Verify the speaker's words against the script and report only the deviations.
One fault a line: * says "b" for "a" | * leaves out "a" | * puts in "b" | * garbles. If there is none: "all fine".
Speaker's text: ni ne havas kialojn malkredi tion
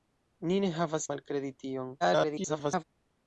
* leaves out "kialojn"
* garbles